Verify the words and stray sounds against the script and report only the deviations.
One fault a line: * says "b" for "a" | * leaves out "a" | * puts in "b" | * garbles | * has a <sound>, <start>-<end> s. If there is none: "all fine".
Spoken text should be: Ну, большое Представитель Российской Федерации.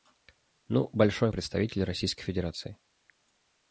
all fine